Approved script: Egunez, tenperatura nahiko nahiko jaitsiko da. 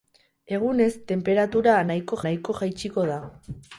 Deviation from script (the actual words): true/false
false